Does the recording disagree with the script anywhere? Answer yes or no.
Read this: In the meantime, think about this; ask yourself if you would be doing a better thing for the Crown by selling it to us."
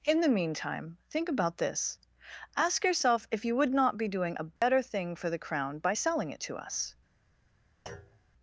yes